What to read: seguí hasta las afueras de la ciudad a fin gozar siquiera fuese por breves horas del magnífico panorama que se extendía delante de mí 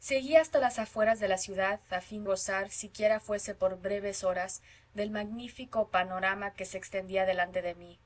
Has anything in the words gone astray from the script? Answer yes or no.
no